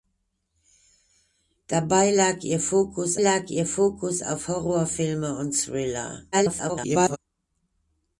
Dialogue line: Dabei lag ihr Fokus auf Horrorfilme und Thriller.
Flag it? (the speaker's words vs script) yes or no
yes